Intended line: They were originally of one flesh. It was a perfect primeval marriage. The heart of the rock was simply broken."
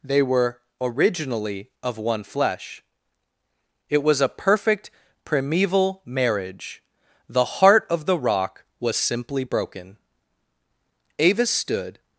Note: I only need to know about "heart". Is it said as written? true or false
true